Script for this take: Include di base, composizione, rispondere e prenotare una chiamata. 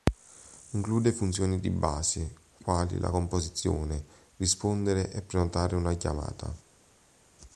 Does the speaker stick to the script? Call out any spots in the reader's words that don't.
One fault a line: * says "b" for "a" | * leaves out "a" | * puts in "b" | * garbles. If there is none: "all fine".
* puts in "funzioni"
* puts in "quali la"